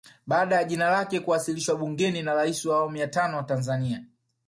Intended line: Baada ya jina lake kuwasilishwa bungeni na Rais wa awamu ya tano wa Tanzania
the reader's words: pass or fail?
pass